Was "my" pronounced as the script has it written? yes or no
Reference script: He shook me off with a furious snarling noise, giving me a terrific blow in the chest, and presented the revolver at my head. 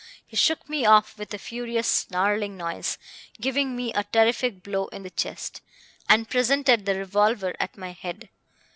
yes